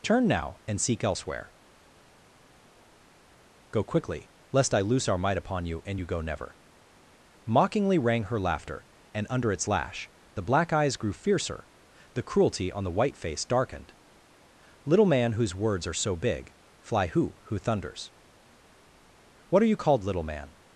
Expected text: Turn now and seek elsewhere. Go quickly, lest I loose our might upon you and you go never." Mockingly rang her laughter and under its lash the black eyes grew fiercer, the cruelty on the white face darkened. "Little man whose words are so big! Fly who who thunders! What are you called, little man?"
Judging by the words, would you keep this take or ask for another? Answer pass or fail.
pass